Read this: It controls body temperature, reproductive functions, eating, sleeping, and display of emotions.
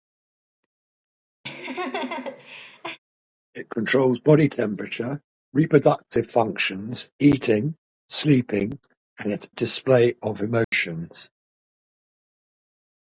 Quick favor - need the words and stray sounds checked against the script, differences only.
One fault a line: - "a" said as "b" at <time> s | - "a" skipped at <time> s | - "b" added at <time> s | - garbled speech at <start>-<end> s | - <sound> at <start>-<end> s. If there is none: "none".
- laugh at 1.4-3.0 s
- dropout at 10.6-10.7 s